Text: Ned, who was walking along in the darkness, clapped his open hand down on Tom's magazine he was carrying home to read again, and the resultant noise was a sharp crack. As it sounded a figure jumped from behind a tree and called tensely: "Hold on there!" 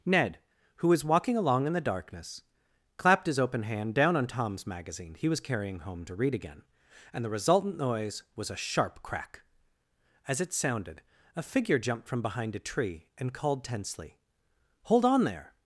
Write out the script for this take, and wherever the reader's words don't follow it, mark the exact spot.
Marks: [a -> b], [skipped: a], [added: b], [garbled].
Ned, who was walking along in the darkness, clapped his open hand down on Tom's magazine he was carrying home to read again, and the resultant noise was a sharp crack. As it sounded a figure jumped from behind a tree and called tensely: "Hold on there!"